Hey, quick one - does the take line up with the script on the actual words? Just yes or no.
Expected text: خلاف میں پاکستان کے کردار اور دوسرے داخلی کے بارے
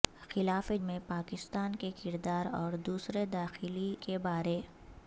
yes